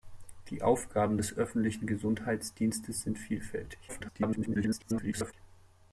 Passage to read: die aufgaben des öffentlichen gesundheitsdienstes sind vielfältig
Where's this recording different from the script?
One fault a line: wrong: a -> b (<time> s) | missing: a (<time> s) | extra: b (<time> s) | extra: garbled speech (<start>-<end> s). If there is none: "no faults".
extra: garbled speech (3.9-5.3 s)